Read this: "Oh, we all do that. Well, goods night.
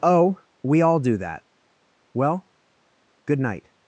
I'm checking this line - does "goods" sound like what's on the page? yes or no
no